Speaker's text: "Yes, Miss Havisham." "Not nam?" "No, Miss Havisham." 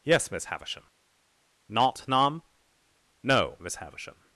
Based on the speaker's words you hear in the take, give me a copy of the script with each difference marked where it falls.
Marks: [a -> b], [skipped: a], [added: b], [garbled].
"Yes, Miss Havisham." "Not nam?" "No, Miss Havisham."